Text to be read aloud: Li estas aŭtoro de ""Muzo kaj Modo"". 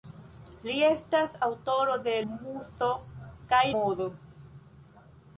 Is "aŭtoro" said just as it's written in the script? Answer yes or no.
yes